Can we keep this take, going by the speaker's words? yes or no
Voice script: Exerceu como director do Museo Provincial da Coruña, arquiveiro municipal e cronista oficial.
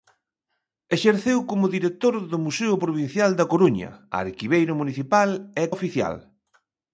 no